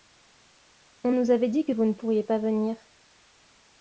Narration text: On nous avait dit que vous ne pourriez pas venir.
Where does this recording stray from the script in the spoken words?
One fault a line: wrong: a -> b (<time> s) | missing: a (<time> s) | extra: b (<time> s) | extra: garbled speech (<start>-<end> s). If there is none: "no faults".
no faults